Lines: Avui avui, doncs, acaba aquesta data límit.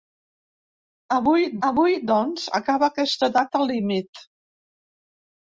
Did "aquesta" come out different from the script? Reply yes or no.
no